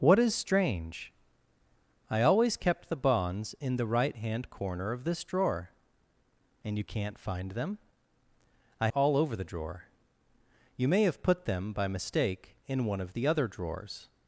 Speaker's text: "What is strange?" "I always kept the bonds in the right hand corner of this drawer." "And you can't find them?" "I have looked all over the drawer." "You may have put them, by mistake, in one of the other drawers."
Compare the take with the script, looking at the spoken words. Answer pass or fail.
fail